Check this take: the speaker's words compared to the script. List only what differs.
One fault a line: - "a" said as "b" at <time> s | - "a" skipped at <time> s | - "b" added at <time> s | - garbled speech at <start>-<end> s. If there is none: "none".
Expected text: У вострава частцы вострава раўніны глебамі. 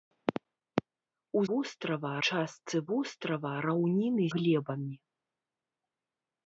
none